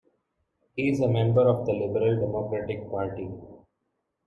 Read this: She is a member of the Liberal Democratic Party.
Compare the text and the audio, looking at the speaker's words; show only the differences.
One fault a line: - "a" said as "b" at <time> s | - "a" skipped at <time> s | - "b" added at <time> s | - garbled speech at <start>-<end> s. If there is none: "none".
- "She" said as "He" at 0.8 s